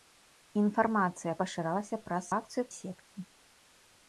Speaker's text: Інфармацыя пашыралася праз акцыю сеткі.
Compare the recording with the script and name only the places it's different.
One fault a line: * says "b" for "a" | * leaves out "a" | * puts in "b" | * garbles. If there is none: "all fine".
all fine